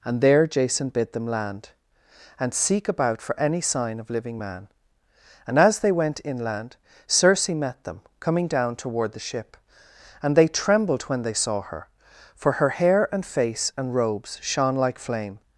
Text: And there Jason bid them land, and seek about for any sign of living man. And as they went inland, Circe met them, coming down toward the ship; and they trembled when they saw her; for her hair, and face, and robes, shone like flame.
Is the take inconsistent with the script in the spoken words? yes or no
no